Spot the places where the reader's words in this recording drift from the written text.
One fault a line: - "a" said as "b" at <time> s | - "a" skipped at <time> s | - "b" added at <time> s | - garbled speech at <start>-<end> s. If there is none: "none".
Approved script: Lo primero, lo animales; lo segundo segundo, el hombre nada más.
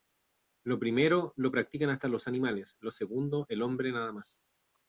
- "practican hasta los" added at 1.5 s
- "segundo" skipped at 3.5 s